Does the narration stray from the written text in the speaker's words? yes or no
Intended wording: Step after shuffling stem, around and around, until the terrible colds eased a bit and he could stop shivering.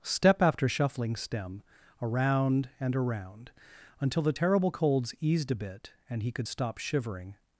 no